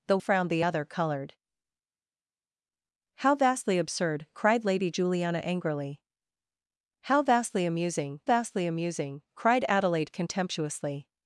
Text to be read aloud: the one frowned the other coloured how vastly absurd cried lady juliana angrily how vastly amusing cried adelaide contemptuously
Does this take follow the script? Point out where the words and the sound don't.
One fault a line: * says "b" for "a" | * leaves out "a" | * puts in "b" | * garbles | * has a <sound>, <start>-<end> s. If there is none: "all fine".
* leaves out "one"
* puts in "vastly amusing"